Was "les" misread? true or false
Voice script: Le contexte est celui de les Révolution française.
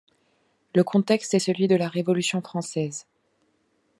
true